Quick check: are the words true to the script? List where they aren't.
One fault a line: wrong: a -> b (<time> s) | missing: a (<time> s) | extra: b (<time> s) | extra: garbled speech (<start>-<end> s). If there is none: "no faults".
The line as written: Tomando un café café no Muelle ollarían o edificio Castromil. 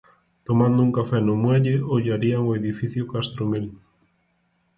missing: café (1.2 s)